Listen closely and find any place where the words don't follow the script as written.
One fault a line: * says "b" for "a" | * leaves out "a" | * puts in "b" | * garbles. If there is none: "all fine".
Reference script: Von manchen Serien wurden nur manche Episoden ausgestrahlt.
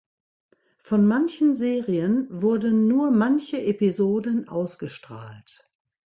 all fine